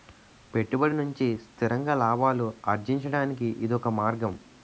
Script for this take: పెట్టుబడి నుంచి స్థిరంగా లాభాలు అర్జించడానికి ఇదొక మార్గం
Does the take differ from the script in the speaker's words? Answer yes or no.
no